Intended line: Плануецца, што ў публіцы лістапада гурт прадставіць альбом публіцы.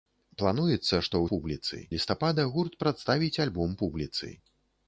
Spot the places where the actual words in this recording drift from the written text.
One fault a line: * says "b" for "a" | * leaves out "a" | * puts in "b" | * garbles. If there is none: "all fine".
all fine